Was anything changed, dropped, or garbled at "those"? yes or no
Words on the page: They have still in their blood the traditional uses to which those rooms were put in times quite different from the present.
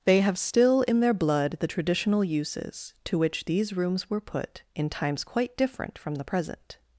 yes